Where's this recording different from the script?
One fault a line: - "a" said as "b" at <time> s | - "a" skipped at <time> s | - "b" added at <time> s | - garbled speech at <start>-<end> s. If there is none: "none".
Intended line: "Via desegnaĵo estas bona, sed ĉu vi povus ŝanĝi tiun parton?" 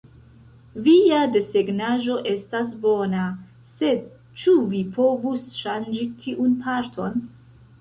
none